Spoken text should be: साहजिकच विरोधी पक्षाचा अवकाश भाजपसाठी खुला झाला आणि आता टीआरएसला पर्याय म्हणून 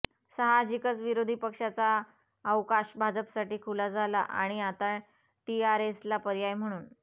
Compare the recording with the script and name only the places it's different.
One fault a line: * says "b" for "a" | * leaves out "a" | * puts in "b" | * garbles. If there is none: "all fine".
all fine